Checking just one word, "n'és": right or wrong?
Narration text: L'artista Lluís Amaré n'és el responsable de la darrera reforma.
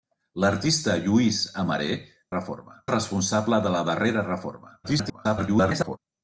wrong